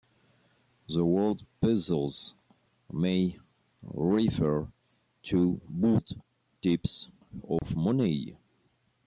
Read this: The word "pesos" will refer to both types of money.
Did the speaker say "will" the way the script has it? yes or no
no